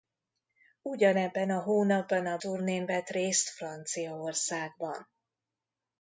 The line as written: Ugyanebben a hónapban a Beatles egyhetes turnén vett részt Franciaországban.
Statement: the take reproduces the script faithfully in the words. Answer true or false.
false